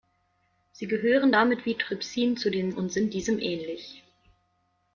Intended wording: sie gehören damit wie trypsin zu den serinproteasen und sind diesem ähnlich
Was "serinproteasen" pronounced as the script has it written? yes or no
no